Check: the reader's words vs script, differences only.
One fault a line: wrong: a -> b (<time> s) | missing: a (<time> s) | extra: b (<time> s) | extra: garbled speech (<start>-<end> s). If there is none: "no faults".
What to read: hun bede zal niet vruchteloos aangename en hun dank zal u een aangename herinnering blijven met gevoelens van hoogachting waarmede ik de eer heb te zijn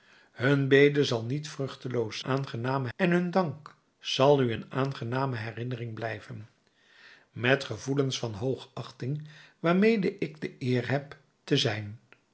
no faults